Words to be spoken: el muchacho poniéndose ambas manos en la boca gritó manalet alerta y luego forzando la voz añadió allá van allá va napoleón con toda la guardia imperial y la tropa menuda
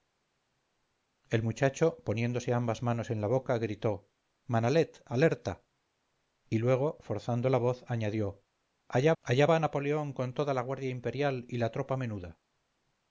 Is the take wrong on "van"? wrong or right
wrong